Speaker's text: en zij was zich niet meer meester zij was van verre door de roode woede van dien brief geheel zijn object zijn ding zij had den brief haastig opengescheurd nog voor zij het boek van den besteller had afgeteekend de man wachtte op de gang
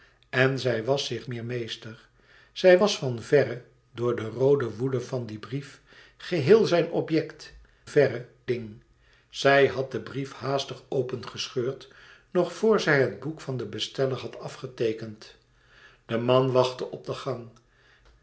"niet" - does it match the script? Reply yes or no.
no